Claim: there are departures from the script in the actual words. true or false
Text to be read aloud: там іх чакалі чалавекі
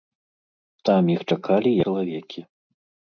false